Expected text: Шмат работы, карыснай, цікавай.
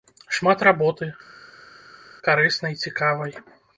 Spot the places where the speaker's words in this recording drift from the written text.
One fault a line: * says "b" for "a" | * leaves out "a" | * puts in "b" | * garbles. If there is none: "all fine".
all fine